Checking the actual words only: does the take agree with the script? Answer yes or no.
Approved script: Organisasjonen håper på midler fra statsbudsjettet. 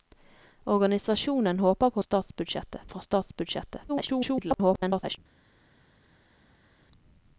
no